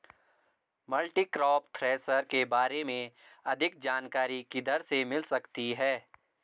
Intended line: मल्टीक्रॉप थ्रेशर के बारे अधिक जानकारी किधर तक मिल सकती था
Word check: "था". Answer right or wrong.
wrong